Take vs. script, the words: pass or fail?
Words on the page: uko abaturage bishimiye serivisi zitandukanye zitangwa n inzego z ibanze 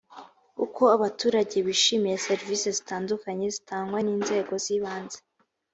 pass